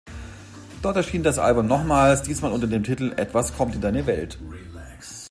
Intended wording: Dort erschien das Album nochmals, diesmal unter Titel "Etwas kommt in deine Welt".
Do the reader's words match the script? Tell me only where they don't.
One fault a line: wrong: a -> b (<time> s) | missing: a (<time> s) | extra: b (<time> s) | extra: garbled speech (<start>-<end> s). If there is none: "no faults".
extra: dem (2.6 s)